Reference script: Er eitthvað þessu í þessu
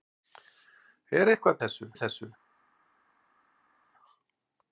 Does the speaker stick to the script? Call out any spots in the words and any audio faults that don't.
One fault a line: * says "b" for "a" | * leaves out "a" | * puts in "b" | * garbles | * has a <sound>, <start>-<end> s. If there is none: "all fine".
all fine